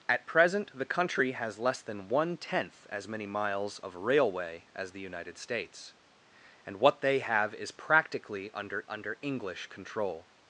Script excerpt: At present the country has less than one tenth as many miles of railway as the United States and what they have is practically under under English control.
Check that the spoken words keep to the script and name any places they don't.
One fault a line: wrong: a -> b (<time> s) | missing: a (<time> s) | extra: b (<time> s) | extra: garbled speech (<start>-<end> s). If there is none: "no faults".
no faults